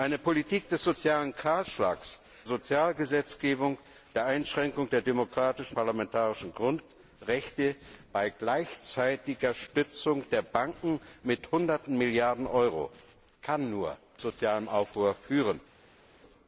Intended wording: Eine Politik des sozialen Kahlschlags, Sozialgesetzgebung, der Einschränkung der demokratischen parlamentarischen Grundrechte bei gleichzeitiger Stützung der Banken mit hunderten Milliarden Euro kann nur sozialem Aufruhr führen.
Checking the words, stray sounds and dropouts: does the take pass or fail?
pass